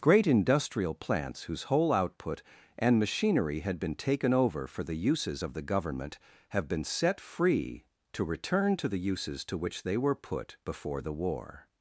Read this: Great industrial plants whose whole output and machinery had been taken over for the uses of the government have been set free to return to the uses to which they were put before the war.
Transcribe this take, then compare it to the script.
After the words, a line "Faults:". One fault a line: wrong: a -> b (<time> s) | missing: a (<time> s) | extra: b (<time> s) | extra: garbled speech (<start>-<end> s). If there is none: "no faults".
Great industrial plants whose whole output and machinery had been taken over for the uses of the government have been set free to return to the uses to which they were put before the war.
Faults:
no faults